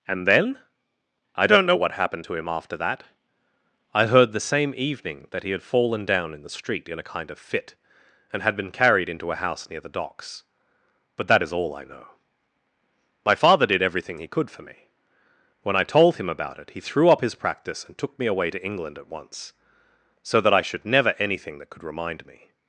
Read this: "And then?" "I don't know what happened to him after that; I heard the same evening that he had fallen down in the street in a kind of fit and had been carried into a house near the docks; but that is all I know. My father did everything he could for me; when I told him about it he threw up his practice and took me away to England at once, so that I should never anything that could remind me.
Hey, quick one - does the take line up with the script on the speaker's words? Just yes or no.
yes